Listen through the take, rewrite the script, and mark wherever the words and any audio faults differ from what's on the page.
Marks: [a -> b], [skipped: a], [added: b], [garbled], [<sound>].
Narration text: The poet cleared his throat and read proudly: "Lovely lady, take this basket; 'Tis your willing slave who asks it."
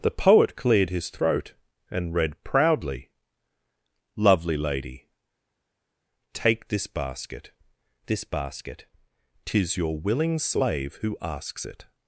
The poet cleared his throat and read proudly: "Lovely lady, take this basket; [added: this basket] 'Tis your willing slave who asks it."